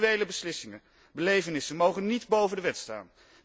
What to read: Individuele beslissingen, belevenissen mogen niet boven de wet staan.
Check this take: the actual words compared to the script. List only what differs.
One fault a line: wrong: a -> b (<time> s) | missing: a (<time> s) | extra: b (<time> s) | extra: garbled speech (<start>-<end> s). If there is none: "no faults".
no faults